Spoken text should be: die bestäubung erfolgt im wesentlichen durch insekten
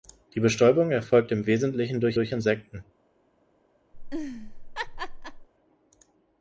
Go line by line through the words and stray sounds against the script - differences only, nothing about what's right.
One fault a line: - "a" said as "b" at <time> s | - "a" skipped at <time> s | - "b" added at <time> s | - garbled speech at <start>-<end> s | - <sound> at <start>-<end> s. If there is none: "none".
- "durch" added at 2.1 s
- laugh at 3.9-5.5 s